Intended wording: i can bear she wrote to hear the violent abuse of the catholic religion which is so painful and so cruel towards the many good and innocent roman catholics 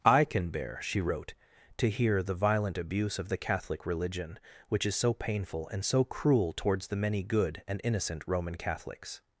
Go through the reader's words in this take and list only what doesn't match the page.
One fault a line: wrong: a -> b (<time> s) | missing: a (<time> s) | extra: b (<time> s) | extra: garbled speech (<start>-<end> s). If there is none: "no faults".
no faults